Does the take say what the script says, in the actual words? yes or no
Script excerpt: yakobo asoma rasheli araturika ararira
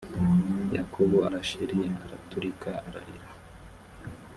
no